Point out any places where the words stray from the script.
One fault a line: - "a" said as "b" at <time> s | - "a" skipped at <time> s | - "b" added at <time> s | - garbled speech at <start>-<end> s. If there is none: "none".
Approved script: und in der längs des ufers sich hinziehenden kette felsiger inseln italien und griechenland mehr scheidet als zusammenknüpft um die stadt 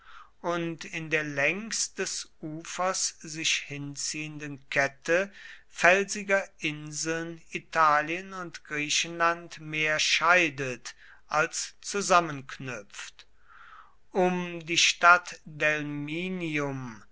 none